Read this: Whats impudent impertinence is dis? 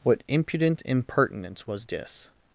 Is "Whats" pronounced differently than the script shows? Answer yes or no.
yes